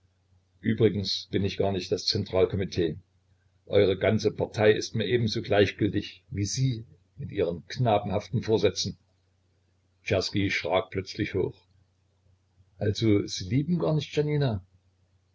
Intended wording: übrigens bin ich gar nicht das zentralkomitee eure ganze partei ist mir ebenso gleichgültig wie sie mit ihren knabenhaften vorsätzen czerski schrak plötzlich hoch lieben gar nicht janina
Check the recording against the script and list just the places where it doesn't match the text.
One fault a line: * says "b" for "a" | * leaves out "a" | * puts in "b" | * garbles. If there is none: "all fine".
* puts in "also sie"